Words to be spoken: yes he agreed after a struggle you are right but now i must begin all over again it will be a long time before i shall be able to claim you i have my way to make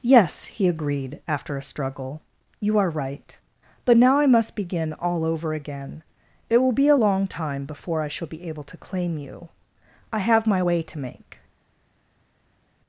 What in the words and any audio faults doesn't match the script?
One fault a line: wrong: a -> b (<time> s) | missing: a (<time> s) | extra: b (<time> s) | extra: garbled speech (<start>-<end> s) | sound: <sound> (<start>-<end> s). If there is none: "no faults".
no faults